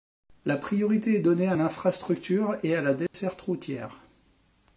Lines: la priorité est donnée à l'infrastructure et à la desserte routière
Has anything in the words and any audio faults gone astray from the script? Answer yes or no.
yes